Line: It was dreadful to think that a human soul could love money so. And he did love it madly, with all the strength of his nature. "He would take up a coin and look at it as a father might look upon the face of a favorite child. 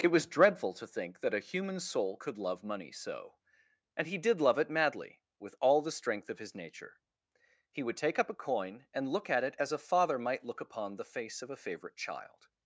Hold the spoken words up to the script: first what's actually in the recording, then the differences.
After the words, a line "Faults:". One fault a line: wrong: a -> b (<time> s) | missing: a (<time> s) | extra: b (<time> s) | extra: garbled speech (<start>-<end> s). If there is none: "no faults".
It was dreadful to think that a human soul could love money so. And he did love it madly, with all the strength of his nature. "He would take up a coin and look at it as a father might look upon the face of a favorite child.
Faults:
no faults